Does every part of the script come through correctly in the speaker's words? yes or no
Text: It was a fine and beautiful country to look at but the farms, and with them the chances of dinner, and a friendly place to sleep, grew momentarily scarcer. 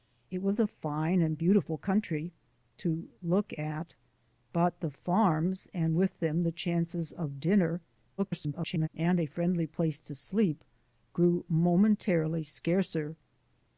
no